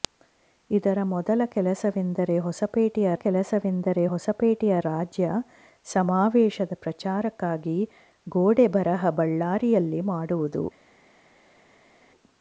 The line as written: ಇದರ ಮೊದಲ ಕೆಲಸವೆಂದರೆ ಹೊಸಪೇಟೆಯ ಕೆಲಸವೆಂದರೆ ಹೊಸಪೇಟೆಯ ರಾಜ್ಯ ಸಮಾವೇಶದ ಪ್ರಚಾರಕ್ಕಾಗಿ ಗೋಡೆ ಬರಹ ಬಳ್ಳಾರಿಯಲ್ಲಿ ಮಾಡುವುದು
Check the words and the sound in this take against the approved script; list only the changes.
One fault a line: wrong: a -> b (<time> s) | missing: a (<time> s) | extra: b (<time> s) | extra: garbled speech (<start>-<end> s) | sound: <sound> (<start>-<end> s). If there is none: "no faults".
no faults